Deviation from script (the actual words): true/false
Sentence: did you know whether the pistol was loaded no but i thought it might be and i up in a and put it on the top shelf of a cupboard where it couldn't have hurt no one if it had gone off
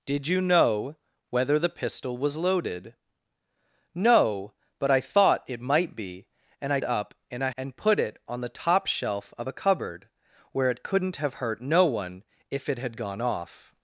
false